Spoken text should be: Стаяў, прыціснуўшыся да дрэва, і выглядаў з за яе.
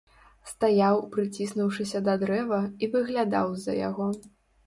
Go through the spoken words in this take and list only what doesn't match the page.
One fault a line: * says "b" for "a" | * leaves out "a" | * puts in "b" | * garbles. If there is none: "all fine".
* says "яго" for "яе"